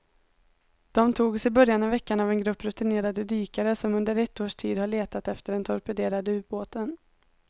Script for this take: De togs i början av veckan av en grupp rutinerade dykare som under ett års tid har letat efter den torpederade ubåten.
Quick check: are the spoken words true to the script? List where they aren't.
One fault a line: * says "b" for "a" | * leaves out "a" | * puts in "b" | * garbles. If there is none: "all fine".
all fine